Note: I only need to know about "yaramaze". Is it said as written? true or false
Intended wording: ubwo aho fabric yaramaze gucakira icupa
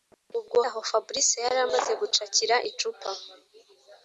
true